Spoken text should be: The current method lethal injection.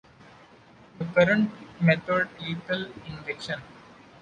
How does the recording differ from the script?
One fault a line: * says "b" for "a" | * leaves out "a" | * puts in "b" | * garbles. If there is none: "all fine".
all fine